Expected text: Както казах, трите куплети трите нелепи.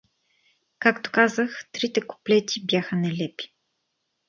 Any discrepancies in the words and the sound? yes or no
yes